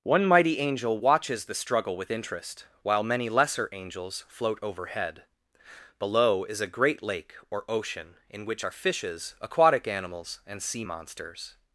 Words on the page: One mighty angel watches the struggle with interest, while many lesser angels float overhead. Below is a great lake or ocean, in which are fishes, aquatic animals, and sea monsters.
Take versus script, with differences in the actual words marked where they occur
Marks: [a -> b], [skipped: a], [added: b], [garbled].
One mighty angel watches the struggle with interest, while many lesser angels float overhead. Below is a great lake or ocean, in which are fishes, aquatic animals, and sea monsters.